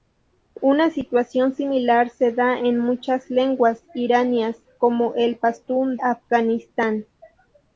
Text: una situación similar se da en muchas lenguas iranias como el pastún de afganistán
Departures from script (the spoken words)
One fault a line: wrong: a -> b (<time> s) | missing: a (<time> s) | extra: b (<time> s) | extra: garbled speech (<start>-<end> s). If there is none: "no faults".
missing: de (6.0 s)